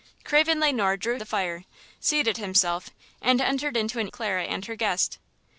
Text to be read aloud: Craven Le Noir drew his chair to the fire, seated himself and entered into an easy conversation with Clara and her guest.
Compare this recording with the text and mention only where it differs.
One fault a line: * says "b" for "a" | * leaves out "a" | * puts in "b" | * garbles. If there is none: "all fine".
* leaves out "his chair to"
* leaves out "easy conversation with"